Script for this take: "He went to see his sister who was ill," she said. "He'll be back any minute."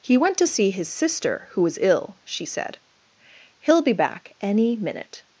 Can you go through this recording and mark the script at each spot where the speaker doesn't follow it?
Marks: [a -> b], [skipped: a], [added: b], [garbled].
"He went to see his sister who was ill," she said. "He'll be back any minute."